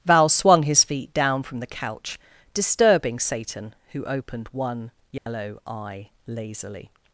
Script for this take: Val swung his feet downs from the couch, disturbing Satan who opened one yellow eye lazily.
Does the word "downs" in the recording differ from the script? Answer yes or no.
yes